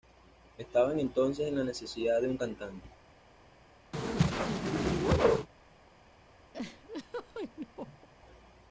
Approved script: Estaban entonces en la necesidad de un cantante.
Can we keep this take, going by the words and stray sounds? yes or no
no